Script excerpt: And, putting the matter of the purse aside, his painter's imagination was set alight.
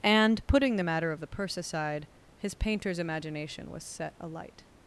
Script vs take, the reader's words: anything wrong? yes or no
no